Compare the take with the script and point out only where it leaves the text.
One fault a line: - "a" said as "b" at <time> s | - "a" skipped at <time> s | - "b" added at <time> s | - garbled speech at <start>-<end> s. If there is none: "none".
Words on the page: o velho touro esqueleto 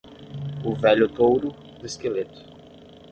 none